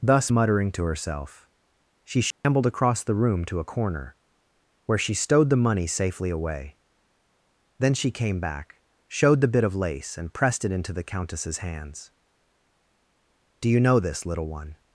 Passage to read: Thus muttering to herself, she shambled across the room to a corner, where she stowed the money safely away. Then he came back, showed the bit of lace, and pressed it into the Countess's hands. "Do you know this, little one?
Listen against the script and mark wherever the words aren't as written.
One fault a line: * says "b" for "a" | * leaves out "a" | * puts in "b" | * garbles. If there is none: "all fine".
* says "she" for "he"